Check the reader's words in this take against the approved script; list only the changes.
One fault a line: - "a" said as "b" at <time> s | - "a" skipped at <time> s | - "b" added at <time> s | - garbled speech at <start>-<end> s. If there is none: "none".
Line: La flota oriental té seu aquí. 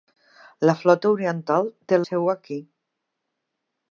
none